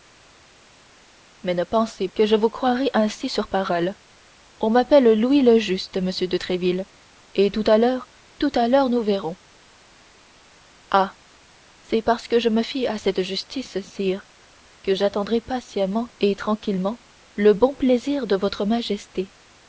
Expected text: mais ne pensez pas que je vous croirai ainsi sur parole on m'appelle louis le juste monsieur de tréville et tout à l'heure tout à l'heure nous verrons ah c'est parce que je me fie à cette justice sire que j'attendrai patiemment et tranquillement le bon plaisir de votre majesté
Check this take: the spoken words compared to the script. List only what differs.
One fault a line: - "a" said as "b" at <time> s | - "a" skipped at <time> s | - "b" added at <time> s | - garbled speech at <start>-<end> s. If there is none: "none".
- "pas" skipped at 2.1 s